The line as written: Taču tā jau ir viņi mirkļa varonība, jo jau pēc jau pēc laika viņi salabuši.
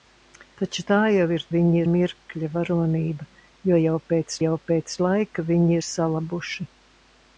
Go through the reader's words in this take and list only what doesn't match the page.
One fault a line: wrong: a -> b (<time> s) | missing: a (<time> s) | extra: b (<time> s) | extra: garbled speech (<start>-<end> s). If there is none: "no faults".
no faults